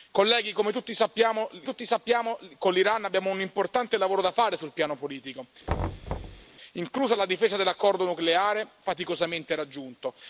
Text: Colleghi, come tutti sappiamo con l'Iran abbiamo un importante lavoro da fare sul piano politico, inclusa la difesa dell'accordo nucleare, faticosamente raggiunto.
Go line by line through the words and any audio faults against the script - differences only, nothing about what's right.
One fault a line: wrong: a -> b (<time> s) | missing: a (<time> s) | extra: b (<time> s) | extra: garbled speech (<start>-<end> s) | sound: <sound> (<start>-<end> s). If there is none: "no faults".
extra: tutti sappiamo (1.6 s)
sound: thud (5.7-6.5 s)